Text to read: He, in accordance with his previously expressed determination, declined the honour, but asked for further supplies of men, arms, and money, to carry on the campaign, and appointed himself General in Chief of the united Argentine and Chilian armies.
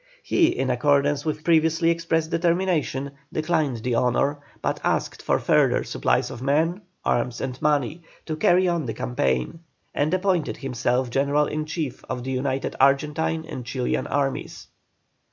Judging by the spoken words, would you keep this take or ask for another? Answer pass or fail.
fail